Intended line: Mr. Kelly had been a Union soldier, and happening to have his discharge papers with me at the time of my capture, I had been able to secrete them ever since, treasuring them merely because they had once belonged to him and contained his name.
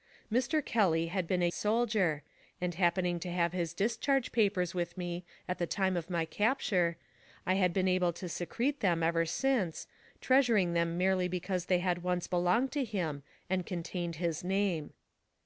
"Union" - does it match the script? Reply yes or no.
no